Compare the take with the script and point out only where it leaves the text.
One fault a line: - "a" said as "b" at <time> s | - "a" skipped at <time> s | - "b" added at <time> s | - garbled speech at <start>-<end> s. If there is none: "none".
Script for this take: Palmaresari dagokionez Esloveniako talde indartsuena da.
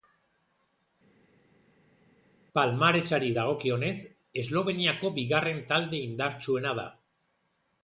- "bigarren" added at 5.2 s